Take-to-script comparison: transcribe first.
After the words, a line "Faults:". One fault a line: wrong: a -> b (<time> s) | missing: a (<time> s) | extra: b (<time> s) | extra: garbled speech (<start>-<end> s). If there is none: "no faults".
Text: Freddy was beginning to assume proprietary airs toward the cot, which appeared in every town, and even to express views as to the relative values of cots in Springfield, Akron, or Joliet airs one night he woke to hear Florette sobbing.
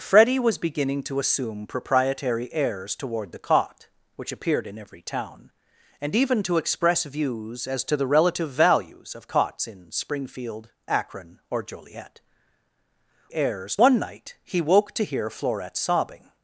Freddy was beginning to assume proprietary airs toward the cot, which appeared in every town, and even to express views as to the relative values of cots in Springfield, Akron, or Joliet airs one night he woke to hear Florette sobbing.
Faults:
no faults